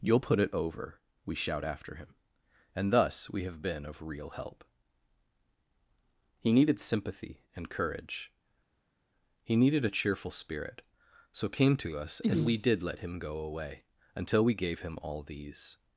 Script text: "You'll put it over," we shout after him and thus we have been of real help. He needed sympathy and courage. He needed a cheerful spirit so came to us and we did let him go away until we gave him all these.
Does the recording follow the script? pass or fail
pass